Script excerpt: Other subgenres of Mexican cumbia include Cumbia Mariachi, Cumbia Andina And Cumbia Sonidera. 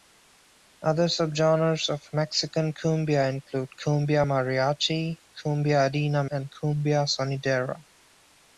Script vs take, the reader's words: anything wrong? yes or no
no